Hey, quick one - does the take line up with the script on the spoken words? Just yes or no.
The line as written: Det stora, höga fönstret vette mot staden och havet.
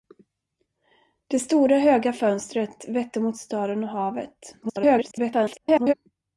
no